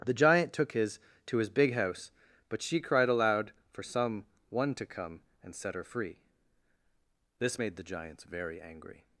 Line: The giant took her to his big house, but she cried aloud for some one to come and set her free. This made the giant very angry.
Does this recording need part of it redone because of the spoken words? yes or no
yes